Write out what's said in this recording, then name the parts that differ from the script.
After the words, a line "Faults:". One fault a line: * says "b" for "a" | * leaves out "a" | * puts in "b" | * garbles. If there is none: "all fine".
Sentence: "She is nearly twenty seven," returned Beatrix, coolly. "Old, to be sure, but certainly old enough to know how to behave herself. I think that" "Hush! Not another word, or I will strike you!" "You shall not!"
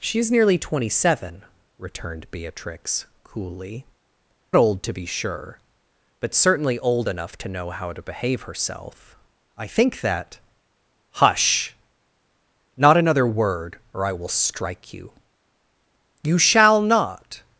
"She is nearly twenty seven," returned Beatrix, coolly. "Old, to be sure, but certainly old enough to know how to behave herself. I think that" "Hush! Not another word, or I will strike you!" "You shall not!"
Faults:
all fine